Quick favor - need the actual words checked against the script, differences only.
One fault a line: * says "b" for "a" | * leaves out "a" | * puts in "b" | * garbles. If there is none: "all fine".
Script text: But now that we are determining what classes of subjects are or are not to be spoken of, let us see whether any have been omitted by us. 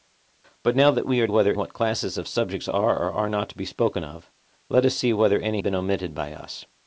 * says "whether" for "determining"
* leaves out "have"